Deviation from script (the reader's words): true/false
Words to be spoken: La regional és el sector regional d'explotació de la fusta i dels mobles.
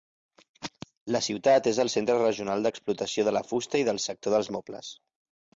true